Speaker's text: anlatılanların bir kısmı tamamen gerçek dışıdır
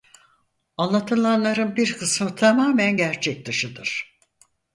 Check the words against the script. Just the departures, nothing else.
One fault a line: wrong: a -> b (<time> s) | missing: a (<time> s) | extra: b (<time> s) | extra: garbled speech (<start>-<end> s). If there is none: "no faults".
no faults